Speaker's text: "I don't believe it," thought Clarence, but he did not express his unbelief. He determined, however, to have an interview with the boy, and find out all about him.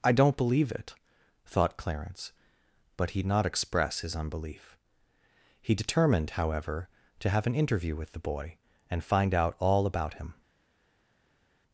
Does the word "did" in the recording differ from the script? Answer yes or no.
yes